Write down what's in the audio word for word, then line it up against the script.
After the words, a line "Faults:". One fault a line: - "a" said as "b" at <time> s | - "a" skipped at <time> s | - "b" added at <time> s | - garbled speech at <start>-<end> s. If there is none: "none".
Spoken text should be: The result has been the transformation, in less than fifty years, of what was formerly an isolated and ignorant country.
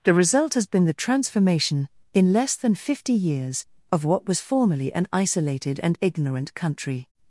The result has been the transformation, in less than fifty years, of what was formerly an isolated and ignorant country.
Faults:
none